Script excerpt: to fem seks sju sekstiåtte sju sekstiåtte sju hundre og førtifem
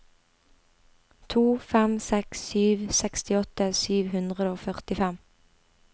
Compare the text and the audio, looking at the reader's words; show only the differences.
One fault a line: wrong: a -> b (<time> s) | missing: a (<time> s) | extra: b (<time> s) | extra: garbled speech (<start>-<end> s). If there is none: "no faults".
missing: sekstiåtte sju (4.0 s)